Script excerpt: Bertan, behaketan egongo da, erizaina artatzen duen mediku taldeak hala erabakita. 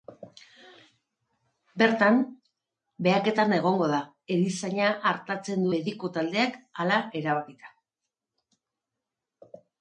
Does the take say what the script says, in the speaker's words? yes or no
no